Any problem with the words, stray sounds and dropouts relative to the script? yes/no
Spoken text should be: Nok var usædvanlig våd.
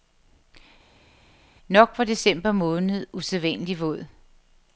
yes